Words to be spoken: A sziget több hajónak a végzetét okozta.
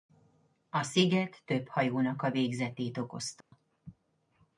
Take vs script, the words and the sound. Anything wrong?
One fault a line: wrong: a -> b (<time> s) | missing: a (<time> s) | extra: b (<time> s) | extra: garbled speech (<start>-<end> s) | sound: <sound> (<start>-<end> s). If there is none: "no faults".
sound: dropout (3.4-3.5 s)